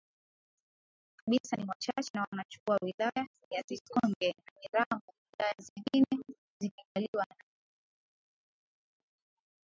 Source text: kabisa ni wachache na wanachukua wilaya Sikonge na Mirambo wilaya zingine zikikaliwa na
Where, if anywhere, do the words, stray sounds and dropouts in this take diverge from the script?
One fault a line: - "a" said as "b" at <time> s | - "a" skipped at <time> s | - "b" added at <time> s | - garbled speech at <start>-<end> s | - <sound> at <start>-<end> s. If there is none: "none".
- "ya" added at 3.5 s